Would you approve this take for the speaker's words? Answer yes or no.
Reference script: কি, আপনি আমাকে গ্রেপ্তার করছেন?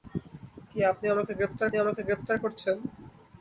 no